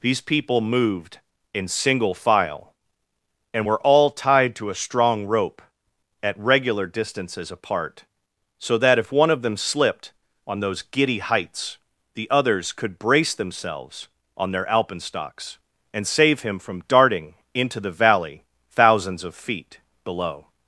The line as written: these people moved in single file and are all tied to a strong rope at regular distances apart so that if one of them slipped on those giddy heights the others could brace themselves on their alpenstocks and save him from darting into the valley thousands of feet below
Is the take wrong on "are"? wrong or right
wrong